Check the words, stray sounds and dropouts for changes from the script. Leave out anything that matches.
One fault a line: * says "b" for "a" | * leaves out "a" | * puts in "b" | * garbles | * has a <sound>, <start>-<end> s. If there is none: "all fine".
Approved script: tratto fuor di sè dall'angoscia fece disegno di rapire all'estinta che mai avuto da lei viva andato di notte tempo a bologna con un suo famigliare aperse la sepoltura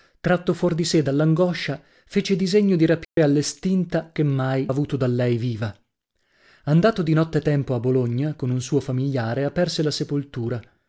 * has a dropout, 3.0-3.2 s